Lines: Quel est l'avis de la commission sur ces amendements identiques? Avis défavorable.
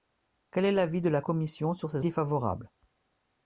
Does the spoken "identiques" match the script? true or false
false